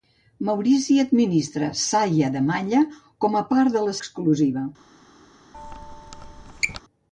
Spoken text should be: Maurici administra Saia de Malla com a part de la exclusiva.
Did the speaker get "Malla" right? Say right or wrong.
right